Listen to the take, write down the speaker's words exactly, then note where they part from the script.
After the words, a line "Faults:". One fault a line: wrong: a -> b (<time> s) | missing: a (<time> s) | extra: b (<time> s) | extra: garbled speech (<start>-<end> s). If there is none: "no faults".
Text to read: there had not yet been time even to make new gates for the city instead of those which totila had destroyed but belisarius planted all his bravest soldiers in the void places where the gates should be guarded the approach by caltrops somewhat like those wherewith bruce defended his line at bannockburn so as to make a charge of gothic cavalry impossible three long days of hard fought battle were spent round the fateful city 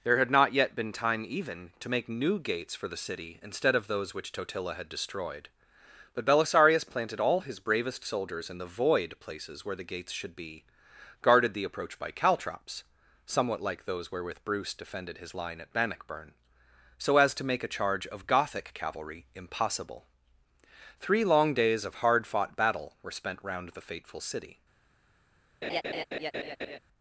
there had not yet been time even to make new gates for the city instead of those which totila had destroyed but belisarius planted all his bravest soldiers in the void places where the gates should be guarded the approach by caltrops somewhat like those wherewith bruce defended his line at bannockburn so as to make a charge of gothic cavalry impossible three long days of hard fought battle were spent round the fateful city
Faults:
no faults